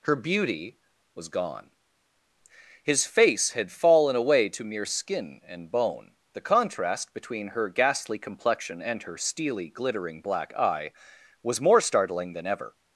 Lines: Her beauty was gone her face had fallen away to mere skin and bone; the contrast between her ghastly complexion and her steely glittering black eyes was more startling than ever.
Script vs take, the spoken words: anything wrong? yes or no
yes